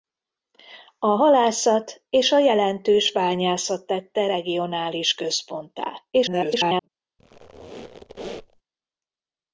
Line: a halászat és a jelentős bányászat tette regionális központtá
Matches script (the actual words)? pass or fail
fail